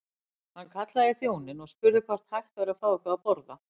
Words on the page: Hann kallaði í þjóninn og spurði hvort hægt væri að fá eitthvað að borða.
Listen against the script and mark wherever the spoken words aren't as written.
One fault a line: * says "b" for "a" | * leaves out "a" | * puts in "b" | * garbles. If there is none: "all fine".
all fine